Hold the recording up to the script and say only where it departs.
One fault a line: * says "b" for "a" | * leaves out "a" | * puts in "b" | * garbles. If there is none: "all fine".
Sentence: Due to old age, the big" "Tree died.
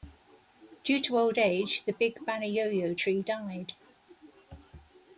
* puts in "Banayoyo"